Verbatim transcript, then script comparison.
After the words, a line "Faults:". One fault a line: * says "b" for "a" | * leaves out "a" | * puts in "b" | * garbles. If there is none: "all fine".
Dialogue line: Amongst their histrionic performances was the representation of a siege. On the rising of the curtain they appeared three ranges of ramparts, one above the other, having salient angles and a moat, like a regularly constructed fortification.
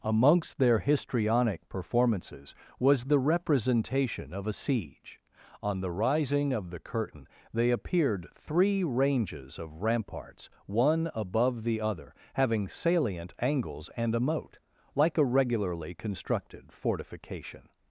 Amongst their histrionic performances was the representation of a siege. On the rising of the curtain they appeared three ranges of ramparts, one above the other, having salient angles and a moat, like a regularly constructed fortification.
Faults:
all fine